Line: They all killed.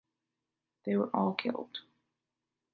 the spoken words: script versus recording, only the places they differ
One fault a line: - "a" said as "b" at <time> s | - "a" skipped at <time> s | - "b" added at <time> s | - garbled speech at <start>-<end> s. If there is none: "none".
- "were" added at 0.9 s